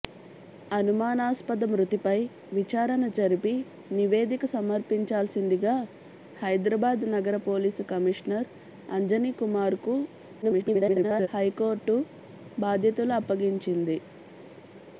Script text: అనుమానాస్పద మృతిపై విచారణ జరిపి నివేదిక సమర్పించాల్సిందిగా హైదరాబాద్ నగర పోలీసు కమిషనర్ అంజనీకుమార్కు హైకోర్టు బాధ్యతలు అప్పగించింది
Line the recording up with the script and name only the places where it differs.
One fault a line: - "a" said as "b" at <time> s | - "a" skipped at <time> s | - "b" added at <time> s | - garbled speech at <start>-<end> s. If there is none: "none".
- garbled speech at 10.4-11.3 s